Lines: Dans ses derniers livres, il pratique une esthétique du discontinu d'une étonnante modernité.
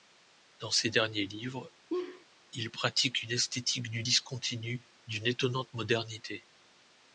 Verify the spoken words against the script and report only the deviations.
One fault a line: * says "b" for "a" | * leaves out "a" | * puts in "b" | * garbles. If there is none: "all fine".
all fine